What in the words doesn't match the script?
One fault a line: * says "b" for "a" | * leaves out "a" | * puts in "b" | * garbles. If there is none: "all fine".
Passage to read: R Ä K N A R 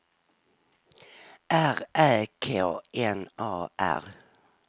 all fine